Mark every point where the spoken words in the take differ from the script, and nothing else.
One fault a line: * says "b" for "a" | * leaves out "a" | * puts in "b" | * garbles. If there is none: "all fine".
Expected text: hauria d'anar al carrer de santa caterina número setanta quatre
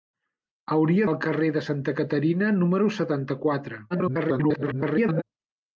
* leaves out "d'anar"
* garbles